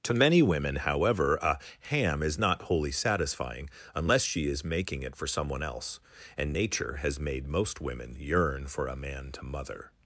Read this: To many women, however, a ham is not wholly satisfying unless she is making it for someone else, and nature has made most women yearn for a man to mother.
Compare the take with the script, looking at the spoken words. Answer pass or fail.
pass